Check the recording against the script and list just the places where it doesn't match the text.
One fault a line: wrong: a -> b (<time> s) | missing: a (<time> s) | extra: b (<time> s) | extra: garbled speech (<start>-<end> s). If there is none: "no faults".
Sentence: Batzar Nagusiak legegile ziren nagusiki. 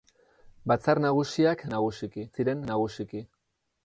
wrong: legegile -> nagusiki (1.7 s)